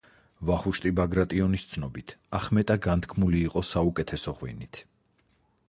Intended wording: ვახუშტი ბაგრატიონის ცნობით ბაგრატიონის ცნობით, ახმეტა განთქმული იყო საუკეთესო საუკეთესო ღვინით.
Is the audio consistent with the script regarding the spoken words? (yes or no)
no